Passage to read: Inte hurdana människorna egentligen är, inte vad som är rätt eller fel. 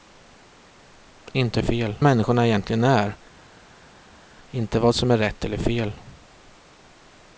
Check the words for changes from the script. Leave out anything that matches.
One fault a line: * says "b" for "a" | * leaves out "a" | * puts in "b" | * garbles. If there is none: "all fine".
* says "fel" for "hurdana"